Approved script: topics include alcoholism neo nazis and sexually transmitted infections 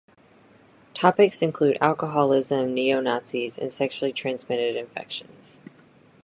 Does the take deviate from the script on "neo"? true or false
false